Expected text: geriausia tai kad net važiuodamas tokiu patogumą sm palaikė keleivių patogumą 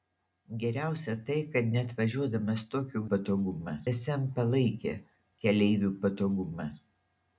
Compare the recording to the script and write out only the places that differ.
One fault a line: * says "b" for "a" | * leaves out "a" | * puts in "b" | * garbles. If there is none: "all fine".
all fine